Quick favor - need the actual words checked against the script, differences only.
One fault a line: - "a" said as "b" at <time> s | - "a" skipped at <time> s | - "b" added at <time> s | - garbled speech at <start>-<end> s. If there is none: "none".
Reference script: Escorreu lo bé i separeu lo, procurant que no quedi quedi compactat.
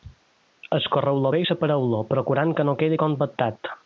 - "quedi" skipped at 3.0 s